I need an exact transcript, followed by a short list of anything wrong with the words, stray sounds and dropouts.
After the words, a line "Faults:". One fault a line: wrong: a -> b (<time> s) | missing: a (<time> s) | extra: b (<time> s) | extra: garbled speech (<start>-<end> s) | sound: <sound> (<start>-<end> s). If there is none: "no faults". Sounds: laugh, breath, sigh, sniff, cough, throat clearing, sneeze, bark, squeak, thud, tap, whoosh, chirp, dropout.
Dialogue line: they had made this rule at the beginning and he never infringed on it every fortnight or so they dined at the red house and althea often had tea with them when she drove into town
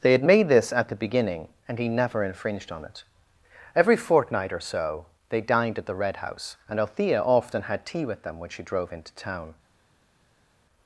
they had made this at the beginning and he never infringed on it every fortnight or so they dined at the red house and althea often had tea with them when she drove into town
Faults:
missing: rule (0.7 s)